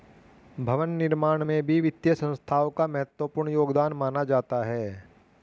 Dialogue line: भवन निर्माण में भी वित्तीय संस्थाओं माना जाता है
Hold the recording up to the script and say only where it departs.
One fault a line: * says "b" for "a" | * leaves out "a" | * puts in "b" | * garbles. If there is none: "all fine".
* puts in "का महत्वपूर्ण योगदान"